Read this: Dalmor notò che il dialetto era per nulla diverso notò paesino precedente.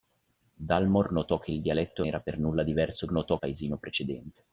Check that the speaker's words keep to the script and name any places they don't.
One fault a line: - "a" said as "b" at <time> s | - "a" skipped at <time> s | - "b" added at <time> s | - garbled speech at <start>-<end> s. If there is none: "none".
none